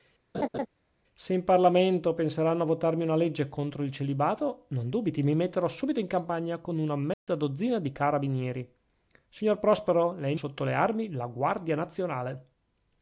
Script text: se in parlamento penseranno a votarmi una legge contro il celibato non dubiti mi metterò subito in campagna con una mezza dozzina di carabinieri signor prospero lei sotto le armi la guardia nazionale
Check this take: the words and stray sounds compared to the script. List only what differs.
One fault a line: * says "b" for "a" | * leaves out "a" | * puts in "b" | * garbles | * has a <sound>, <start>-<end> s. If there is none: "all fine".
* has a laugh, 0.3-0.7 s
* has a dropout, 7.1-7.3 s